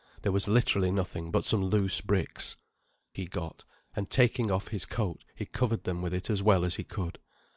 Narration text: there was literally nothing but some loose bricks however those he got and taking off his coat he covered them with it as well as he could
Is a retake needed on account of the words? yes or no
yes